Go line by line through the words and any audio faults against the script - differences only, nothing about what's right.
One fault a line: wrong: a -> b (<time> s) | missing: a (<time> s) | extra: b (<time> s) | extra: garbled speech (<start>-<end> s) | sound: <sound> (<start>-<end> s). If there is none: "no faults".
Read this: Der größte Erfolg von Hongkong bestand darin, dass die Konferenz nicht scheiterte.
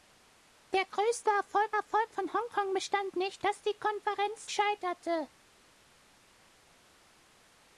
extra: Erfolg (1.7 s)
wrong: darin -> nicht (3.1 s)
missing: nicht (4.5 s)